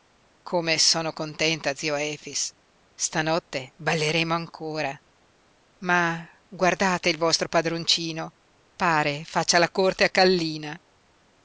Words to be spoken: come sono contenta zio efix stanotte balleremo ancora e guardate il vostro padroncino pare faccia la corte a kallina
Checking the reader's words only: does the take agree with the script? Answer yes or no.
no